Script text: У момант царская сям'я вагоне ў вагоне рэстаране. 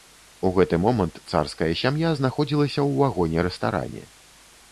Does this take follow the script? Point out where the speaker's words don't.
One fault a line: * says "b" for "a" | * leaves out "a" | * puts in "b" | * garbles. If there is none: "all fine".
* puts in "гэты"
* says "знаходзілася" for "вагоне"